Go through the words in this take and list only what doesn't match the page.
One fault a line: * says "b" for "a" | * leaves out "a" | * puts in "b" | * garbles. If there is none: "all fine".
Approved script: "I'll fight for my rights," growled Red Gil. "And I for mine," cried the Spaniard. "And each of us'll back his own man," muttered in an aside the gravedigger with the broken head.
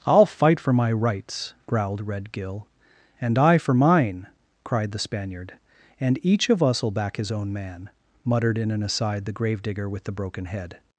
all fine